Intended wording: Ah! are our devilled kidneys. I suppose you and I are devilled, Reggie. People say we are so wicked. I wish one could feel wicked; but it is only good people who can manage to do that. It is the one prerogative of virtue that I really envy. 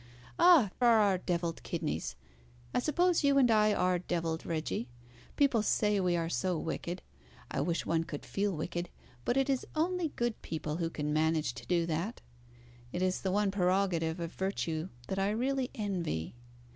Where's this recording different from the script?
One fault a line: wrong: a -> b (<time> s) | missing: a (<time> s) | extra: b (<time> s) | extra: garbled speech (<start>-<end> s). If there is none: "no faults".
no faults